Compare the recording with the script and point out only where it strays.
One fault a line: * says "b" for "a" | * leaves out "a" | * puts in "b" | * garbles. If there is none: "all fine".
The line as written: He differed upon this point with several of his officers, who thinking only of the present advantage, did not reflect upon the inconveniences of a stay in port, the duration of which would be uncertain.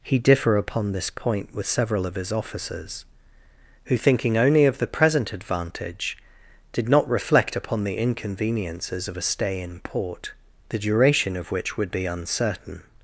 * says "differ" for "differed"